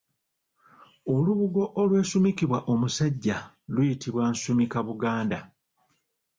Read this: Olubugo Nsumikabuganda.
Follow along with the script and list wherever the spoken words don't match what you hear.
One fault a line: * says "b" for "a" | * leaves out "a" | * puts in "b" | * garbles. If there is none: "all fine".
* puts in "olwesumikibwa omusajja luyitibwa"